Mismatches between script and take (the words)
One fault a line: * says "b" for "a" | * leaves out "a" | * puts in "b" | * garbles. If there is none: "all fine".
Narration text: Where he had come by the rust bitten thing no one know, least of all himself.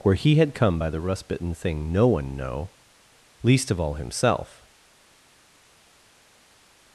all fine